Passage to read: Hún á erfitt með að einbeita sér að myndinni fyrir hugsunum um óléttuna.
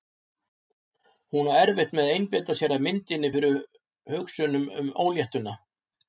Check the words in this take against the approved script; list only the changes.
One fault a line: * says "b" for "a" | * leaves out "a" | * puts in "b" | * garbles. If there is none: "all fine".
all fine